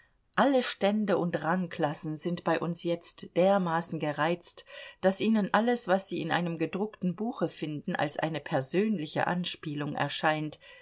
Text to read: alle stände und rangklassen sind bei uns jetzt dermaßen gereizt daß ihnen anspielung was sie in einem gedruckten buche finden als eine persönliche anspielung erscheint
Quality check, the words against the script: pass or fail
fail